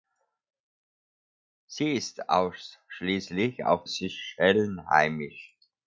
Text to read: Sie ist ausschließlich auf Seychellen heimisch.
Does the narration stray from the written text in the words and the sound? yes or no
no